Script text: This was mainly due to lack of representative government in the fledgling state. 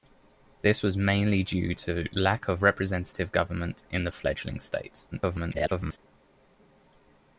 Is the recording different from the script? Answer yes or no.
yes